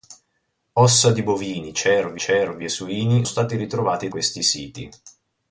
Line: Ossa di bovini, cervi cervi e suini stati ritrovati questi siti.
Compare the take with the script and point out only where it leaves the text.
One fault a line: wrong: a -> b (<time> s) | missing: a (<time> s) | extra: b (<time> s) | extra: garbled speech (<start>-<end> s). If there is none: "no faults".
no faults